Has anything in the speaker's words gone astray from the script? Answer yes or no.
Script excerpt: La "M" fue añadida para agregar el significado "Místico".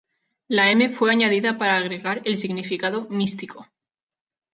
no